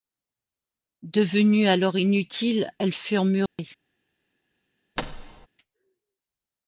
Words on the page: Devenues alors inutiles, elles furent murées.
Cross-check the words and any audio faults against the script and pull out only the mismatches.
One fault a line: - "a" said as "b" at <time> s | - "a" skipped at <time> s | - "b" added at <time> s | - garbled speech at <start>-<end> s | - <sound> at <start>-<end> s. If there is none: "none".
- dropout at 3.5-3.6 s
- thud at 5.0-5.5 s